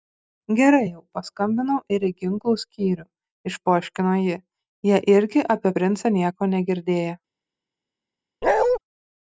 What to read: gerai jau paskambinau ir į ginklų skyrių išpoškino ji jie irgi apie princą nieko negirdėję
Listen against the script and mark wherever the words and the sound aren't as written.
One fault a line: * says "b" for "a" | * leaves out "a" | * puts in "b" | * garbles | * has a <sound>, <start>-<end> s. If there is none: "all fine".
* has a bark, 8.4-8.8 s